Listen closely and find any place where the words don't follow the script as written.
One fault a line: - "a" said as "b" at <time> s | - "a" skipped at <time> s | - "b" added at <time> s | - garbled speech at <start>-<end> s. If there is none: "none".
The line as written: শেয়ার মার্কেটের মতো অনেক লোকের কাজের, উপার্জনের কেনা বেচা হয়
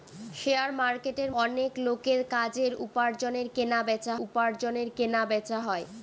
- "মতো" skipped at 1.3 s
- "উপার্জনের কেনা বেচা" added at 4.2 s